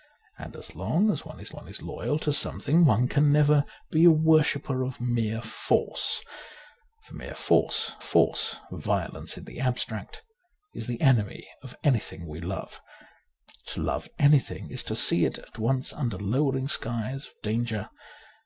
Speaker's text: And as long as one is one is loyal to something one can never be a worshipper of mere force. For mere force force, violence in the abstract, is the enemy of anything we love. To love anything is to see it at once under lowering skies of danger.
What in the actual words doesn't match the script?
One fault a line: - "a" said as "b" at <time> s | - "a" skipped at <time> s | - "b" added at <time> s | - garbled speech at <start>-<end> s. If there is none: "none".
none